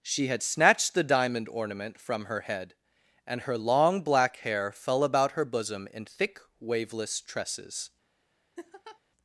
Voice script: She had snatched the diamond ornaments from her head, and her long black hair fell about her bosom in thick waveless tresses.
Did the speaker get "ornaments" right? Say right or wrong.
wrong